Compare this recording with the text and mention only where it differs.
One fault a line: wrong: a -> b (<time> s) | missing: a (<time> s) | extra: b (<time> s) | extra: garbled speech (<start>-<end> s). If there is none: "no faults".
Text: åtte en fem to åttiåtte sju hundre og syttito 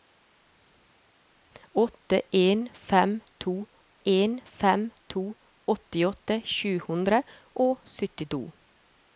extra: en fem to (4.0 s)